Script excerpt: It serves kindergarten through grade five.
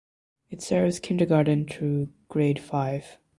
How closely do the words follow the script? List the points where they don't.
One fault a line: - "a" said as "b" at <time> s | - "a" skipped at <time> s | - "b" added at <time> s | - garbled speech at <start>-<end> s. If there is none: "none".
none